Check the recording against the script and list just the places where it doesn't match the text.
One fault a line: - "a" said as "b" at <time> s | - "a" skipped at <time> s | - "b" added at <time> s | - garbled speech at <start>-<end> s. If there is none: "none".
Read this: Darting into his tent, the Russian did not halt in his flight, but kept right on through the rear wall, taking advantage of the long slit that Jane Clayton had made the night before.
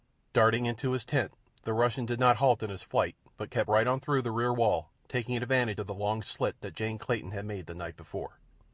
none